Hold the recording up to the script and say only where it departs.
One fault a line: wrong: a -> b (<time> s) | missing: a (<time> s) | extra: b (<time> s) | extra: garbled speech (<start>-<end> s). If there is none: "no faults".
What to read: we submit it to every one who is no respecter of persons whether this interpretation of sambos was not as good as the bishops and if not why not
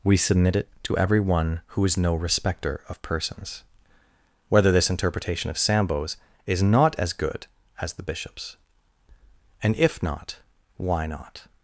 wrong: was -> is (6.5 s)